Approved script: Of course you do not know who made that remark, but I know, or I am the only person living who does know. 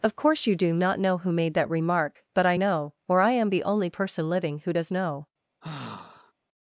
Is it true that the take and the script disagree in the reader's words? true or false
false